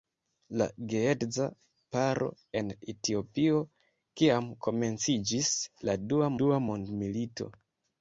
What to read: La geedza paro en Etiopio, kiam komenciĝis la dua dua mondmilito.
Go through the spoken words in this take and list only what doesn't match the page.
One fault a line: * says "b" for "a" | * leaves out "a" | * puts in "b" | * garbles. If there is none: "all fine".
all fine